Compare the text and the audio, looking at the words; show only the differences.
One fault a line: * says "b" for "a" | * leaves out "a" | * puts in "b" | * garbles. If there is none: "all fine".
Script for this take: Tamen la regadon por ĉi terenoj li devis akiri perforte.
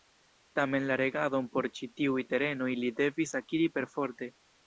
* puts in "tiuj"